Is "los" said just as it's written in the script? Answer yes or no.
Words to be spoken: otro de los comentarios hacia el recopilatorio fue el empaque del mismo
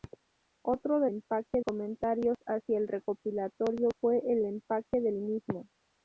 no